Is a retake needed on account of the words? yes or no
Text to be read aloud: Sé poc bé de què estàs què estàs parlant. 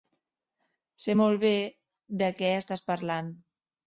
yes